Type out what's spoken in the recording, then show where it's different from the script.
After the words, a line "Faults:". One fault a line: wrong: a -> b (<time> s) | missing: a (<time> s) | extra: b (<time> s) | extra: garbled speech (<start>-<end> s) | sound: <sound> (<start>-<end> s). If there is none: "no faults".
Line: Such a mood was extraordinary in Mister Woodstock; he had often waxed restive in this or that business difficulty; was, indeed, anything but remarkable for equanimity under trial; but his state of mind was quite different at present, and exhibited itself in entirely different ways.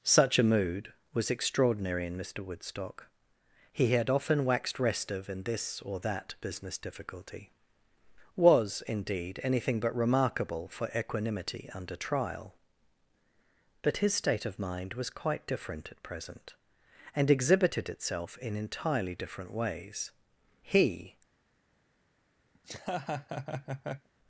Such a mood was extraordinary in Mister Woodstock; he had often waxed restive in this or that business difficulty; was, indeed, anything but remarkable for equanimity under trial; but his state of mind was quite different at present, and exhibited itself in entirely different ways. He
Faults:
extra: He (20.6 s)
sound: laugh (22.5-24.1 s)